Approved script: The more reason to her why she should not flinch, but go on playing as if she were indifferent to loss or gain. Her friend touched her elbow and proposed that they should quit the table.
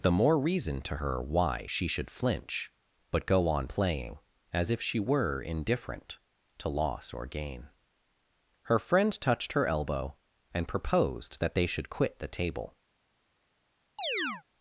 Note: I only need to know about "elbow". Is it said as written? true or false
true